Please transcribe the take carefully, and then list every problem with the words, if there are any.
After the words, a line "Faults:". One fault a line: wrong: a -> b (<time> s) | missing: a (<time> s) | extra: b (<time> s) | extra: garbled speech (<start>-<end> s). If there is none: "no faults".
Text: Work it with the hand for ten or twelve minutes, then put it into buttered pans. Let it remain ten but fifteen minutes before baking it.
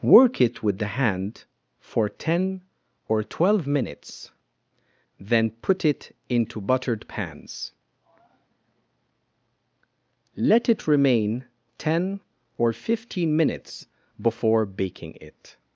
Work it with the hand for ten or twelve minutes, then put it into buttered pans. Let it remain ten or fifteen minutes before baking it.
Faults:
wrong: but -> or (12.6 s)